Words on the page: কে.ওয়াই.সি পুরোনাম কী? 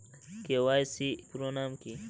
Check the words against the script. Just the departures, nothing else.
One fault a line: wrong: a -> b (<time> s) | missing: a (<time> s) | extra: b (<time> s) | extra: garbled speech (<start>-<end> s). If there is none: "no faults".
no faults